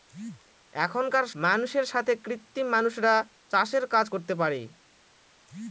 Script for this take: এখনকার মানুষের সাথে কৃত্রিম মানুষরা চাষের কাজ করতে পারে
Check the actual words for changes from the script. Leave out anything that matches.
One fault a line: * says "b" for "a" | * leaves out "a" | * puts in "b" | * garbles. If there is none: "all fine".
all fine